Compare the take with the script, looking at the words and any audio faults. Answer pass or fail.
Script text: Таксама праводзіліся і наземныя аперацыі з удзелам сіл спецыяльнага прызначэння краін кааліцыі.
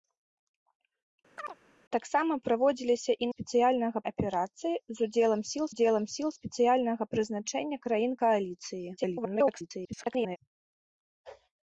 fail